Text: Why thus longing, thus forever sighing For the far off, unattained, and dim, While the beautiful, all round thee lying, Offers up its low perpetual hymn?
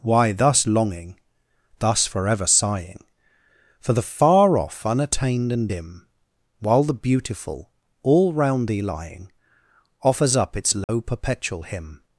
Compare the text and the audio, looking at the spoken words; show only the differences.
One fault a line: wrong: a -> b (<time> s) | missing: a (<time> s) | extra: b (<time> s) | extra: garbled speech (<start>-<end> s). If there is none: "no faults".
no faults